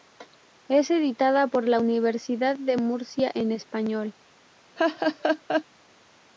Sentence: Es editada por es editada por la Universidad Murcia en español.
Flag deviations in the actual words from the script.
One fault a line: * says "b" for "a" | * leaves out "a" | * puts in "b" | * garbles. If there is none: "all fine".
* leaves out "es editada por"
* puts in "de"